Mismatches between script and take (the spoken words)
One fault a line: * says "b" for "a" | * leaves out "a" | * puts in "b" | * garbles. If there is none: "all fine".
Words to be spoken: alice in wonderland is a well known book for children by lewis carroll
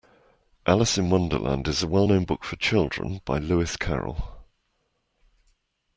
all fine